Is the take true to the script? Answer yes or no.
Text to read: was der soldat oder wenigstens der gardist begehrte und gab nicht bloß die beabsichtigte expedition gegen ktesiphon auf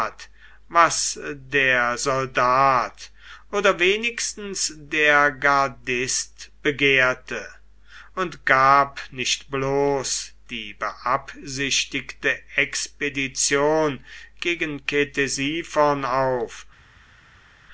yes